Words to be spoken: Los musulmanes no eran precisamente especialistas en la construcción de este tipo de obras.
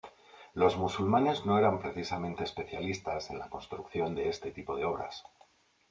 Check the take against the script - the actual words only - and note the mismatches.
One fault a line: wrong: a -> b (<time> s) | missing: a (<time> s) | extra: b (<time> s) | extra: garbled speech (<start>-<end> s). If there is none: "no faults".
no faults